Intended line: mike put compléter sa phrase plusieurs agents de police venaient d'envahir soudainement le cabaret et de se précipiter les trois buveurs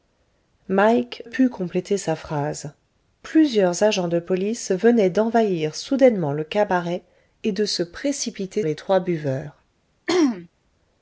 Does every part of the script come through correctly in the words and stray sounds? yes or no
no